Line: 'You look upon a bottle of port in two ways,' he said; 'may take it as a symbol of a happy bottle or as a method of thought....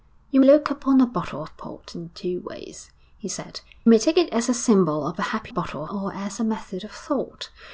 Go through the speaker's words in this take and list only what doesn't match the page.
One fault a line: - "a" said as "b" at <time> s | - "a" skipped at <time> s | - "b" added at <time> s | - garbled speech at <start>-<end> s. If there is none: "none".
none